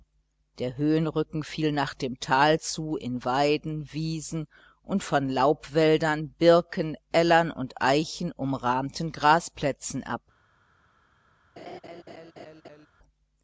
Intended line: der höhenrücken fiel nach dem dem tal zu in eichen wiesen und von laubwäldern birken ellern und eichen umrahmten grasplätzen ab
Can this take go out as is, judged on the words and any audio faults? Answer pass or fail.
fail